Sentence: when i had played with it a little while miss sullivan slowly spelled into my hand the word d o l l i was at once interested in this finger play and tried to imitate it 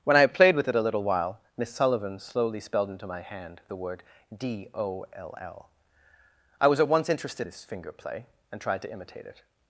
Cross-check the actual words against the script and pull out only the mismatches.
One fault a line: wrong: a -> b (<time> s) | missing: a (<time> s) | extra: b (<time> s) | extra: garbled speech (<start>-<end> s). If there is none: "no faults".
missing: in (7.5 s)